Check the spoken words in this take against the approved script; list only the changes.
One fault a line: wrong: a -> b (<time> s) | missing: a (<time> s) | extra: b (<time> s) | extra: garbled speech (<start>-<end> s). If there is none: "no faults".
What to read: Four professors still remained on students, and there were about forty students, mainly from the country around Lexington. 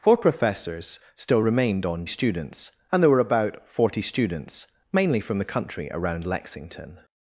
no faults